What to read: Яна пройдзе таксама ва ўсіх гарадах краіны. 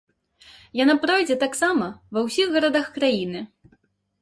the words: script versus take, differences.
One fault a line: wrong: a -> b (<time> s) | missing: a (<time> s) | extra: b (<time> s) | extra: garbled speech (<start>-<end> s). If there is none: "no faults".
no faults